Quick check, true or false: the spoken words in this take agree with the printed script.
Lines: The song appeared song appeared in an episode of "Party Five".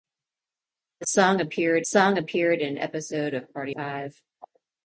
true